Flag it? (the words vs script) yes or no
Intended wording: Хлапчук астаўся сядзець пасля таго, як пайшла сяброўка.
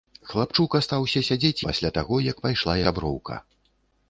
no